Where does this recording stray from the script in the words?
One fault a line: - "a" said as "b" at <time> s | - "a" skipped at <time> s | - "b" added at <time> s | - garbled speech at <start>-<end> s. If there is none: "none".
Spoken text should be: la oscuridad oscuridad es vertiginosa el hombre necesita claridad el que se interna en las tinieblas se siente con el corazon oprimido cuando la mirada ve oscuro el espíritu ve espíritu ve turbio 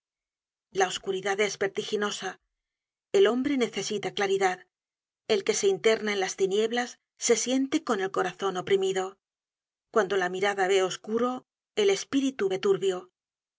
- "oscuridad" skipped at 1.4 s
- "espíritu ve" skipped at 12.6 s